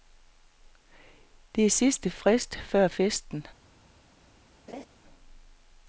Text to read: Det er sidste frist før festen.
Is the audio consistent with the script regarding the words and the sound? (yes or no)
no